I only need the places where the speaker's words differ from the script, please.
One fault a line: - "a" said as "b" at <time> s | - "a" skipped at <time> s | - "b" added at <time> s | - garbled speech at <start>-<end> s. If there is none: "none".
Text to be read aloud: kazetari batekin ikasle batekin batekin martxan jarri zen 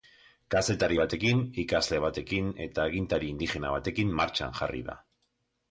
- "eta agintari indigena" added at 2.7 s
- "zen" said as "da" at 4.9 s